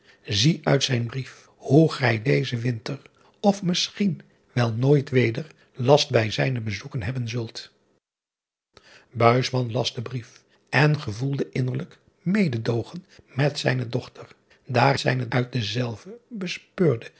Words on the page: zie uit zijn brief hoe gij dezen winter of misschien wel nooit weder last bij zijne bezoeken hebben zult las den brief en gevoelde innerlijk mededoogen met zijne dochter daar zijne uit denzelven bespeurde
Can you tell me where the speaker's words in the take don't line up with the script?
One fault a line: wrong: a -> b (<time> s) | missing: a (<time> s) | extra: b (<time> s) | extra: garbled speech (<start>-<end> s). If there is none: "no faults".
no faults